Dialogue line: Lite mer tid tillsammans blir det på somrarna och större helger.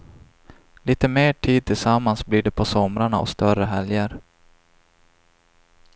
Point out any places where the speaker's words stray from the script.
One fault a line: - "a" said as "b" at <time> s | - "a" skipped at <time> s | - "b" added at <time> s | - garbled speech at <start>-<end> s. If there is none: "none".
none